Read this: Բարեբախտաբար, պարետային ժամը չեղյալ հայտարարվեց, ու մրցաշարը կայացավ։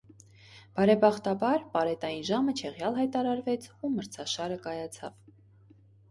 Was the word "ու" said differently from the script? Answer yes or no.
no